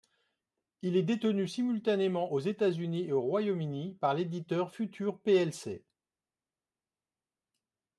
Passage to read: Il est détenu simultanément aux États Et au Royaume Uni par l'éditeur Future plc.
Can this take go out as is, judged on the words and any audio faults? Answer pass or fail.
fail